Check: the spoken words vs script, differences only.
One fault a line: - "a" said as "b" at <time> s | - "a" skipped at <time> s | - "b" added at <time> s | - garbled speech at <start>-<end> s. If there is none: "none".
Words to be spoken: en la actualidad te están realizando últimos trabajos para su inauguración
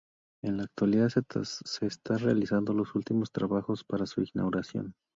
- "te" said as "se" at 1.1 s
- "los" added at 2.7 s